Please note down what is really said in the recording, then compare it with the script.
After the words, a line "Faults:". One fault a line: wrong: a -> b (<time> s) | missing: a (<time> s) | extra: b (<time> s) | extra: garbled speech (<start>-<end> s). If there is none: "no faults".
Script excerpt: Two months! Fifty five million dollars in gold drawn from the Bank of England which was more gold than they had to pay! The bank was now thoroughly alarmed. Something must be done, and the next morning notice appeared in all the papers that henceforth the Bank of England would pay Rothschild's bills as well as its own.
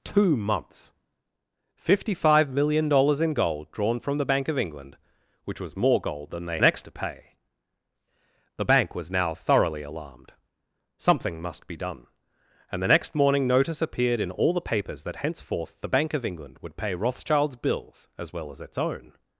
Two months! Fifty five million dollars in gold drawn from the Bank of England which was more gold than they next to pay! The bank was now thoroughly alarmed. Something must be done, and the next morning notice appeared in all the papers that henceforth the Bank of England would pay Rothschild's bills as well as its own.
Faults:
wrong: had -> next (6.6 s)